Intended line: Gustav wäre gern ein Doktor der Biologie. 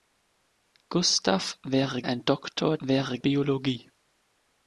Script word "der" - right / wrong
wrong